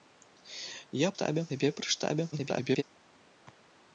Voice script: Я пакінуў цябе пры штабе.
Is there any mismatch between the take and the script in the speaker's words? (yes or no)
yes